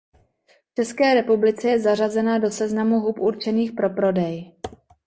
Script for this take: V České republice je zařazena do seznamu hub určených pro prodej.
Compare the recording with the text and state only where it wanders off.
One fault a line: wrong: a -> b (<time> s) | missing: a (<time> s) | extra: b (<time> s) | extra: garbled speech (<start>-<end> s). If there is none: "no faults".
no faults